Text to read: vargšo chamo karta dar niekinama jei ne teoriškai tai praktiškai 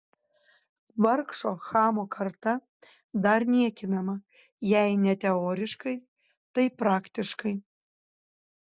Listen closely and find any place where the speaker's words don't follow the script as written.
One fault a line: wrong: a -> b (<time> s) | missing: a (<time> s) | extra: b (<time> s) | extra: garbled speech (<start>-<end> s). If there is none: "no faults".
no faults